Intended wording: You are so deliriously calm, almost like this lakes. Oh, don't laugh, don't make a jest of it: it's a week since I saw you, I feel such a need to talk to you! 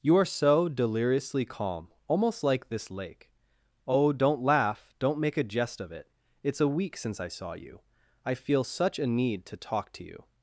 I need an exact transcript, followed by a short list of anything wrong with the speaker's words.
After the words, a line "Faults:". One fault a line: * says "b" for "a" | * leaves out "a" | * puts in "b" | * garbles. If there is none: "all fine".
You are so deliriously calm, almost like this lake. Oh, don't laugh, don't make a jest of it: it's a week since I saw you, I feel such a need to talk to you!
Faults:
* says "lake" for "lakes"